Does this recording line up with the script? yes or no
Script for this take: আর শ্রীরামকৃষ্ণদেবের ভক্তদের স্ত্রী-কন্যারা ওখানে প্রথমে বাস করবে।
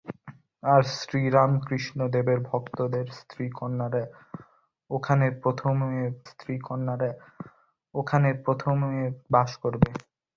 no